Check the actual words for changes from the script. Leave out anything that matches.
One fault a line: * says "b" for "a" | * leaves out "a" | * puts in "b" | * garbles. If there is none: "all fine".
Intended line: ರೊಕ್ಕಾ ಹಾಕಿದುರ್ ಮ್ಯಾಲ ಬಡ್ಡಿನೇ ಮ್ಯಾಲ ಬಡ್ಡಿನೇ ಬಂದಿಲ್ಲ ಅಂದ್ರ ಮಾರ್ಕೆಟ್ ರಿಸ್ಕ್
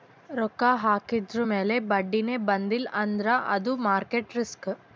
* leaves out "ಮ್ಯಾಲ ಬಡ್ಡಿನೇ"
* puts in "ಅದು"